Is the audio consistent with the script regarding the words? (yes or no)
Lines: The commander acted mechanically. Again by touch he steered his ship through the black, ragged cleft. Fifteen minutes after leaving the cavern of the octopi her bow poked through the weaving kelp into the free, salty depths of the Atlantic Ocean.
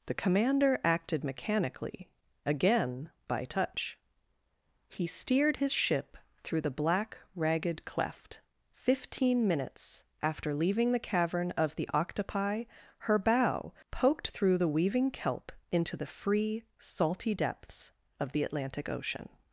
yes